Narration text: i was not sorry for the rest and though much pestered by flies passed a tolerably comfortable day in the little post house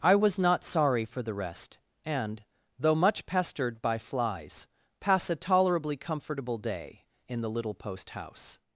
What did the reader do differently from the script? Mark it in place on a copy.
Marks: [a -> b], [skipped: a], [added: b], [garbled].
i was not sorry for the rest and though much pestered by flies [passed -> pass] a tolerably comfortable day in the little post house